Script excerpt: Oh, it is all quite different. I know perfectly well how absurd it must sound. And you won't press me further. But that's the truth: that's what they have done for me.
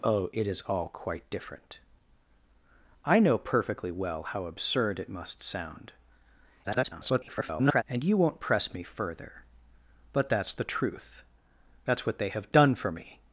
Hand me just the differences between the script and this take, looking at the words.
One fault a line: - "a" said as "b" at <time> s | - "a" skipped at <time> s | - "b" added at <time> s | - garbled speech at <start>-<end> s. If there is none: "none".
- garbled speech at 6.6-7.8 s